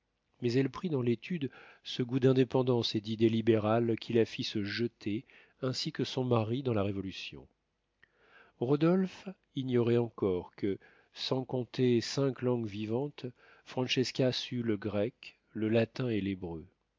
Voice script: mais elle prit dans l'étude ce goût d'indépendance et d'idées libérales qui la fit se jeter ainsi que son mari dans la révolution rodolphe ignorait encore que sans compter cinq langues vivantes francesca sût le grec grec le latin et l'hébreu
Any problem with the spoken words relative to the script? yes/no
yes